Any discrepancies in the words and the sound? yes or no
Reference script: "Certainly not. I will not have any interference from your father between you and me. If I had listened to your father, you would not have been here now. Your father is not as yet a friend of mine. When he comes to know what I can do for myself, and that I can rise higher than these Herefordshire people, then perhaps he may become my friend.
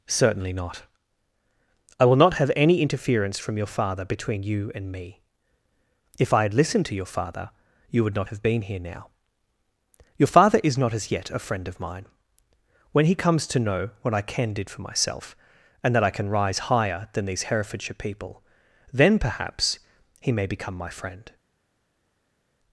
yes